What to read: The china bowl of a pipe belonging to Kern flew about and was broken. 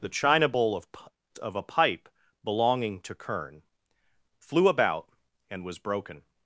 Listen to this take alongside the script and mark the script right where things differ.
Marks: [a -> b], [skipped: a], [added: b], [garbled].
The china bowl of [added: of] a pipe belonging to Kern flew about and was broken.